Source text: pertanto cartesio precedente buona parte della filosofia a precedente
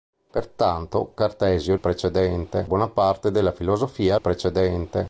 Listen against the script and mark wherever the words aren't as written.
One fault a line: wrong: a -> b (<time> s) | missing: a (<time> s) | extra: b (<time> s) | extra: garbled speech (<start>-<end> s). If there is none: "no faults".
no faults